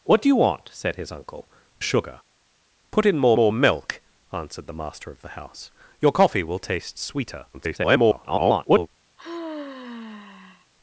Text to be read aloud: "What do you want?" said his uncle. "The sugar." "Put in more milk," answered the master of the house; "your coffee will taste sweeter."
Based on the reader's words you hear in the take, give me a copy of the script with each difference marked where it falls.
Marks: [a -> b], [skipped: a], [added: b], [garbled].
"What do you want?" said his uncle. [skipped: "The] sugar." "Put in more [added: more] milk," answered the master of the house; "your coffee will taste sweeter." [garbled]